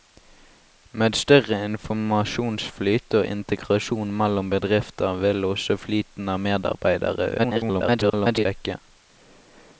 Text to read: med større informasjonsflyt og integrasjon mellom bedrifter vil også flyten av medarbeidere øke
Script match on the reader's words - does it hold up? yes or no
no